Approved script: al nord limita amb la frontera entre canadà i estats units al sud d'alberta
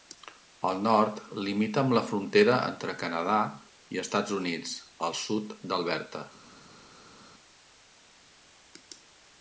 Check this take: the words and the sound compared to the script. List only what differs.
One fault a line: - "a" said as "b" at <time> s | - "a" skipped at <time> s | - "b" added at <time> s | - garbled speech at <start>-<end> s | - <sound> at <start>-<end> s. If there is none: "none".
none